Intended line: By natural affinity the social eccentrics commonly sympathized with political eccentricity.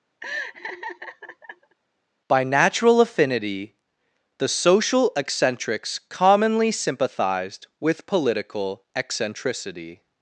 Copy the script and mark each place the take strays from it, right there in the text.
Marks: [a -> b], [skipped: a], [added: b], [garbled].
By natural affinity the social eccentrics commonly sympathized with political eccentricity.